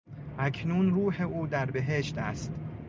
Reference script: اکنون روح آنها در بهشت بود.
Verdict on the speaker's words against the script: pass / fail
fail